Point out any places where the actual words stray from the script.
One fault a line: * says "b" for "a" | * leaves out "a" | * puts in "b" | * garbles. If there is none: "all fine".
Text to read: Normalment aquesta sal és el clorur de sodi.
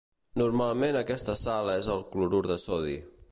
all fine